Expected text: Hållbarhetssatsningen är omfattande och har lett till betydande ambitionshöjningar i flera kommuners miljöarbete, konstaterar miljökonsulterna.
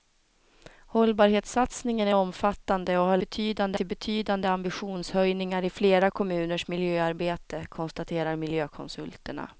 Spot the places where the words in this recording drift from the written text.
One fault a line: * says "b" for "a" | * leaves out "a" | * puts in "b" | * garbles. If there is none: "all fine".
* says "betydande" for "lett"